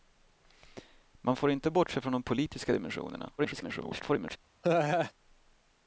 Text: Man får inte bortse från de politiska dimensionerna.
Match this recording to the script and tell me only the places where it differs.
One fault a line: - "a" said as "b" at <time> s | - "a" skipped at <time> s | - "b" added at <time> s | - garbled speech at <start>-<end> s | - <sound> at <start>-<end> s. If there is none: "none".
- garbled speech at 3.4-4.4 s
- laugh at 4.6-5.1 s